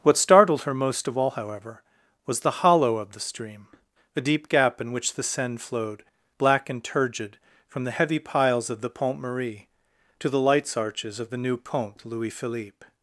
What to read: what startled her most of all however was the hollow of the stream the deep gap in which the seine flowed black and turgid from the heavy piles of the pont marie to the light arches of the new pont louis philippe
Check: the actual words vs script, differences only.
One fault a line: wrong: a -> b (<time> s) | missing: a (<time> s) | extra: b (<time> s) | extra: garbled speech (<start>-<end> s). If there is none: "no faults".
wrong: light -> lights (10.4 s)